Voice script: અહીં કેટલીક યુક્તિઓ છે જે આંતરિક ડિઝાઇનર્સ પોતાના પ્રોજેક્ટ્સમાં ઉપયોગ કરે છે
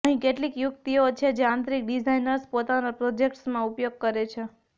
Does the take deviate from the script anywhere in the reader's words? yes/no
no